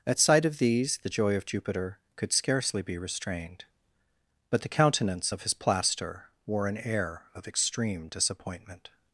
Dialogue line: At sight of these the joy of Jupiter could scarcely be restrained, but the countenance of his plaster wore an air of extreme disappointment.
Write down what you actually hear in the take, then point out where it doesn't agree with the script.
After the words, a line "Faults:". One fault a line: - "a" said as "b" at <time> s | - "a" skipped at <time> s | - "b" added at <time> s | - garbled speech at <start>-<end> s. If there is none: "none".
At sight of these the joy of Jupiter could scarcely be restrained, but the countenance of his plaster wore an air of extreme disappointment.
Faults:
none